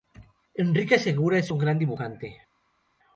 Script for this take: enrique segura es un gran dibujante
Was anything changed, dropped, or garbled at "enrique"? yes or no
no